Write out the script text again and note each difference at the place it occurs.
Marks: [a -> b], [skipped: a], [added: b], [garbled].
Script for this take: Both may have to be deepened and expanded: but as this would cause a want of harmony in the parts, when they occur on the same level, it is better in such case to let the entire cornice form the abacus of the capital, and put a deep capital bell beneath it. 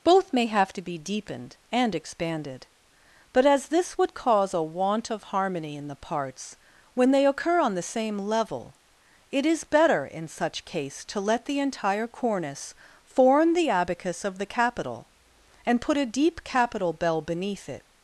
Both may have to be deepened and expanded: but as this would cause a want of harmony in the parts, when they occur on the same level, it is better in such case to let the entire cornice form the abacus of the capital, and put a deep capital bell beneath it.